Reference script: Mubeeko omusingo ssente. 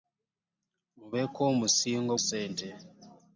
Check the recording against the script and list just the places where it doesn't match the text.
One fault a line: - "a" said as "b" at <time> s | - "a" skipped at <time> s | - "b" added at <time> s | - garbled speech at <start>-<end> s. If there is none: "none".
none